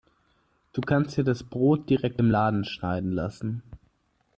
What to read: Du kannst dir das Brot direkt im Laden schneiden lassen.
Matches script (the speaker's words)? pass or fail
pass